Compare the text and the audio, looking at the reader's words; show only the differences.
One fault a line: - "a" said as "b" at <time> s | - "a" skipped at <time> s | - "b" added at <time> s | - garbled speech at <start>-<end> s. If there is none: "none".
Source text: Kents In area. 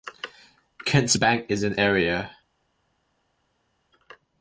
- "Bank is" added at 1.1 s